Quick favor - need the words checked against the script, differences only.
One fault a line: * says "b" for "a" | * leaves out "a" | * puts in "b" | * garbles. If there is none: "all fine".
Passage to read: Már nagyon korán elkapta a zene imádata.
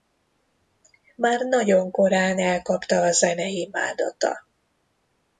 all fine